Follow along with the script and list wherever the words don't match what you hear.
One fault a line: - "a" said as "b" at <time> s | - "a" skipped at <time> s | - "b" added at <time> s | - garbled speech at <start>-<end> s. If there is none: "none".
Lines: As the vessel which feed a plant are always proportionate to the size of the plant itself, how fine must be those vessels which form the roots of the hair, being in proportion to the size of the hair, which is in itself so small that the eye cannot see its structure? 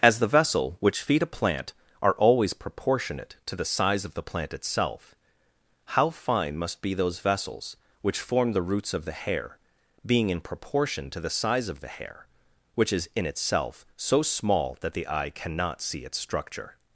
none